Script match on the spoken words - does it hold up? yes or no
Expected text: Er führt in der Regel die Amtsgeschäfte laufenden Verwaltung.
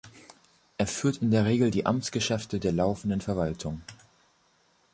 no